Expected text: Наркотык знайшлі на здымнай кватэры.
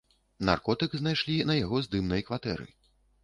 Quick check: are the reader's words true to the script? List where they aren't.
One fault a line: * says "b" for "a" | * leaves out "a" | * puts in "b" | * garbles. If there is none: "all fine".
* puts in "яго"